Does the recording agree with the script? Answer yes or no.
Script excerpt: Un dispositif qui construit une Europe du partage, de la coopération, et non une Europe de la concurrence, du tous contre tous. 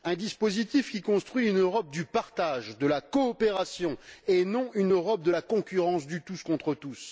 yes